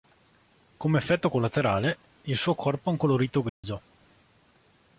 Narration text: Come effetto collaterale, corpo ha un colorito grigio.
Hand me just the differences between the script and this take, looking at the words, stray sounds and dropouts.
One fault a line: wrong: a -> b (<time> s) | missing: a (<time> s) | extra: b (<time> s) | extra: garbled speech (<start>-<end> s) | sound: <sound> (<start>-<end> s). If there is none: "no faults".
extra: il suo (2.2 s)
sound: dropout (3.5-3.6 s)